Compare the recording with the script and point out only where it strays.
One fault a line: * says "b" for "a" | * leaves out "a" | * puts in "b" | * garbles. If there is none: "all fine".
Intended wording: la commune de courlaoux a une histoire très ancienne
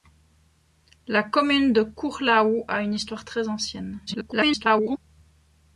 * garbles